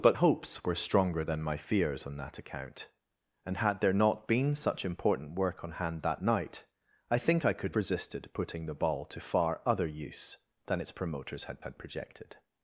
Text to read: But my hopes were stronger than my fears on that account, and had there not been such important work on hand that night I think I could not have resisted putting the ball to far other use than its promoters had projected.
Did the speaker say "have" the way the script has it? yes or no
no